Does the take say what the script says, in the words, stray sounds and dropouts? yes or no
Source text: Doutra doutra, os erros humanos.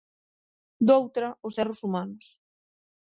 no